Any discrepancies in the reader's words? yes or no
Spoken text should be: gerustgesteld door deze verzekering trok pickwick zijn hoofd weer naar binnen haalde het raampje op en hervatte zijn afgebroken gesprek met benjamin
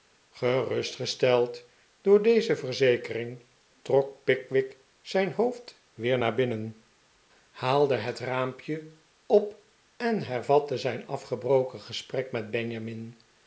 no